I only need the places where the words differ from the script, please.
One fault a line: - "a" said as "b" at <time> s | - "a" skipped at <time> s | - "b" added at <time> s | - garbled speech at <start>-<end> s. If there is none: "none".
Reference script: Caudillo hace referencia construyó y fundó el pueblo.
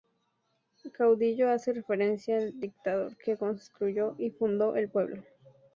- "al dictador que" added at 2.4 s